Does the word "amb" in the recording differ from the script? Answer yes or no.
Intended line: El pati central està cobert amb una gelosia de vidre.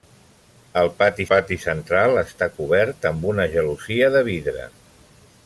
no